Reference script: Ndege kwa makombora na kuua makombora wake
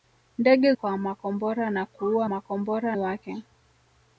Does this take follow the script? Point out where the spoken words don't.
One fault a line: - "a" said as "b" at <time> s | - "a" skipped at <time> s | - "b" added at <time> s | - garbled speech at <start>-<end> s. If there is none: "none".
none